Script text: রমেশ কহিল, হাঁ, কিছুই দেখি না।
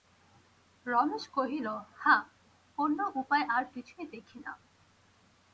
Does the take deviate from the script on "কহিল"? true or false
false